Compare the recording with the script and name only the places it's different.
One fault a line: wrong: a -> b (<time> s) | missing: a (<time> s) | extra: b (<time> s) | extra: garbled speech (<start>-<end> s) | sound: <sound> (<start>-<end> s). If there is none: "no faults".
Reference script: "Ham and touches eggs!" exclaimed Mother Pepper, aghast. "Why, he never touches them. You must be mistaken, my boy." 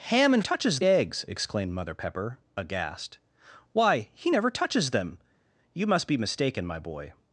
no faults